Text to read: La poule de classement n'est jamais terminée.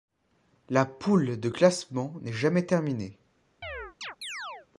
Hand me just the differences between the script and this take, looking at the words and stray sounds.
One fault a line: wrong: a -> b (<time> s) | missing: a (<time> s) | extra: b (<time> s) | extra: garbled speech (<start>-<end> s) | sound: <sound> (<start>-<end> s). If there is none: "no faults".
sound: chirp (3.6-4.7 s)